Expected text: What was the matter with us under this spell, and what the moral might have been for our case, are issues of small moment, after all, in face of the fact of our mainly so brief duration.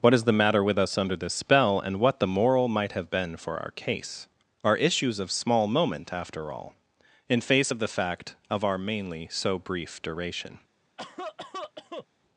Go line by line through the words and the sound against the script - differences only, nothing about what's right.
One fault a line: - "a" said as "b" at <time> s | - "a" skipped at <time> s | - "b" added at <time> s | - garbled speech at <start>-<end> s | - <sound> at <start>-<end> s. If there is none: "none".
- "was" said as "is" at 0.1 s
- cough at 11.0-12.1 s